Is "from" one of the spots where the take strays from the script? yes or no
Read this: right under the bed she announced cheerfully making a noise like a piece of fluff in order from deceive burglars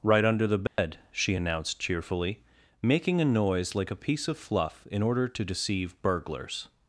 yes